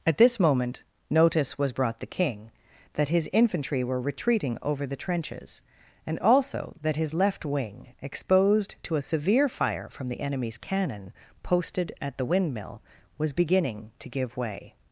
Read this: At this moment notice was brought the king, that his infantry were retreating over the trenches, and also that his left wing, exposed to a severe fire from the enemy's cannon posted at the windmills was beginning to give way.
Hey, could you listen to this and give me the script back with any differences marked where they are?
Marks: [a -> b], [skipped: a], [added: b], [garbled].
At this moment notice was brought the king, that his infantry were retreating over the trenches, and also that his left wing, exposed to a severe fire from the enemy's cannon posted at the [windmills -> windmill] was beginning to give way.